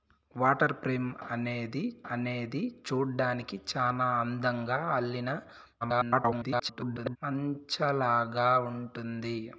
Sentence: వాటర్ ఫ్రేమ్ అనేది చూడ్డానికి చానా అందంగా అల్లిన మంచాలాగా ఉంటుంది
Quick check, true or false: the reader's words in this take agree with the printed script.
false